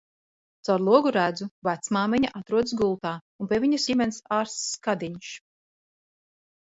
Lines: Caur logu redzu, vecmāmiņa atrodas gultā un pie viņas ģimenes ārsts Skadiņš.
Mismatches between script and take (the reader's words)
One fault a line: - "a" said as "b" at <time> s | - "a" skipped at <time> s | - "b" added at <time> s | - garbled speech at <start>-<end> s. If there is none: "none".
none